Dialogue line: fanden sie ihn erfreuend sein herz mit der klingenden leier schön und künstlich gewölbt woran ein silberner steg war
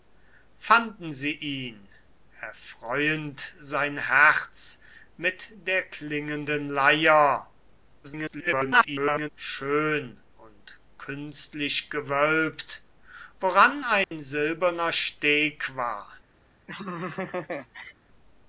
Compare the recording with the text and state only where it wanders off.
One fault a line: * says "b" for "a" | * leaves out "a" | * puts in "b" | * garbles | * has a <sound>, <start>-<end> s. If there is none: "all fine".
* garbles
* has a dropout, 14.0-14.1 s
* has a laugh, 16.7-17.9 s